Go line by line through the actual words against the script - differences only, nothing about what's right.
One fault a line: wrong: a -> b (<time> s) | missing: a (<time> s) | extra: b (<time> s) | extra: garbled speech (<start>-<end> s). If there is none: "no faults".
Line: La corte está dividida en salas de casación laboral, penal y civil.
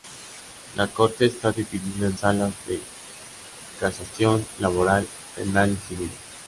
no faults